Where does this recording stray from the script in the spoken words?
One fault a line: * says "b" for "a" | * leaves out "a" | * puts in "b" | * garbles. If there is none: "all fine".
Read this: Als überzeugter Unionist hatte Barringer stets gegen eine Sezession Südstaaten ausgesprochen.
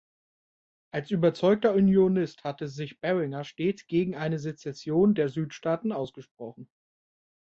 * puts in "sich"
* puts in "der"